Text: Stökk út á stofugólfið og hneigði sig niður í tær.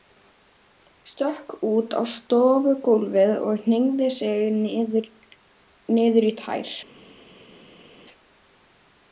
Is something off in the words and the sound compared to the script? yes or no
no